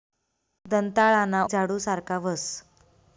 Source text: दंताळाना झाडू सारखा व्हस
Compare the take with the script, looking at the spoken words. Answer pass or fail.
pass